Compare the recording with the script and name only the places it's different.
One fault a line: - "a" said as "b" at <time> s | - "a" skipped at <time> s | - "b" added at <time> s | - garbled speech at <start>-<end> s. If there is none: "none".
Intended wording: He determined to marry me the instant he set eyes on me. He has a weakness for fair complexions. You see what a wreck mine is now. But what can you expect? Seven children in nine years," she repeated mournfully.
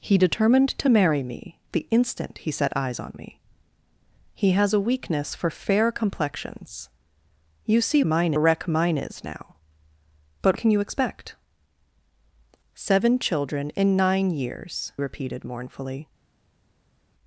- "what" said as "mine" at 8.0 s
- "what" skipped at 10.6 s
- "she" skipped at 14.9 s